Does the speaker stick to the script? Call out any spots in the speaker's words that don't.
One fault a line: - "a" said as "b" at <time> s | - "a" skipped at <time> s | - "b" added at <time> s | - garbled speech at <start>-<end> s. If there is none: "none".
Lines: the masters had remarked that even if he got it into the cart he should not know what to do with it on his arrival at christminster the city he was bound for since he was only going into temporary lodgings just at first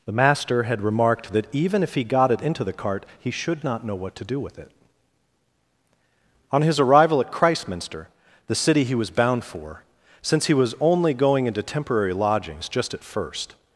- "masters" said as "master" at 0.1 s